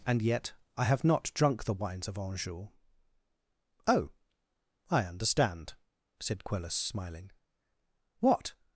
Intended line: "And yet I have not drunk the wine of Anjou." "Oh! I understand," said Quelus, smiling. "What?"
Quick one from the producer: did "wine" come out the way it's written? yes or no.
no